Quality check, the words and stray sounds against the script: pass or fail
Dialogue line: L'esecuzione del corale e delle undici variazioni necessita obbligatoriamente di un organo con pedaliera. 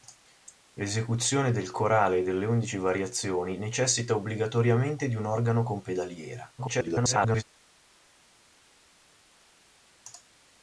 fail